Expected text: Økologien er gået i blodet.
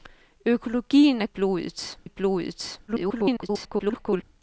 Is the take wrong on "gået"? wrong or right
wrong